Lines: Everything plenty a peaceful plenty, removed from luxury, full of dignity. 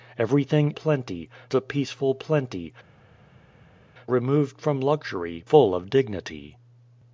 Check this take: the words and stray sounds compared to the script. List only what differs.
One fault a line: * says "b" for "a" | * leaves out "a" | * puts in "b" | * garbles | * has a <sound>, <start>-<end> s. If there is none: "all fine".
all fine